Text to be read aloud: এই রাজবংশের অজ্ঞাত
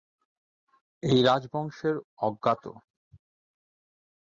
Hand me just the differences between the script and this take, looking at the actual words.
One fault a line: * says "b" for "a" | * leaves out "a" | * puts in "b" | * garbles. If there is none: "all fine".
all fine